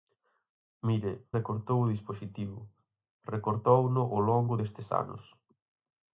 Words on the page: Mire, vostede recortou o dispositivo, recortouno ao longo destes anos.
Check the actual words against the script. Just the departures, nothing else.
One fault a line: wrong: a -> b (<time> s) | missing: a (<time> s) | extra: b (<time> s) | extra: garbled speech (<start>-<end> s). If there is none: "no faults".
missing: vostede (1.1 s)